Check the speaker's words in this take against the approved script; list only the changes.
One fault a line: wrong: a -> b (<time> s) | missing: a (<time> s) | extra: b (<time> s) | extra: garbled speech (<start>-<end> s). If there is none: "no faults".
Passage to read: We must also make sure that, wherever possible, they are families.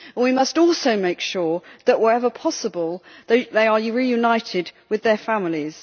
extra: reunited with their (3.8 s)